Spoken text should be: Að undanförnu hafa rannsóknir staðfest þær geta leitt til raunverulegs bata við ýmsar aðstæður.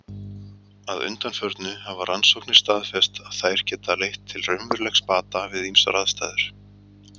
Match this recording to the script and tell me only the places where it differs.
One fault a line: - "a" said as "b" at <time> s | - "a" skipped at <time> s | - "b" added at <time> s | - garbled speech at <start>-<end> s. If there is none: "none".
- "að" added at 3.2 s